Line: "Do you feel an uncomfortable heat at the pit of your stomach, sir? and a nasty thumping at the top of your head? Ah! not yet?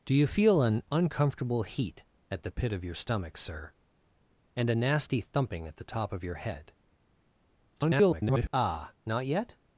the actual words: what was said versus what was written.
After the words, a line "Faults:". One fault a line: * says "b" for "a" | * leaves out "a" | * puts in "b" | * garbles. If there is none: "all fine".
"Do you feel an uncomfortable heat at the pit of your stomach, sir? and a nasty thumping at the top of your head? [garbled] Ah! not yet?
Faults:
* garbles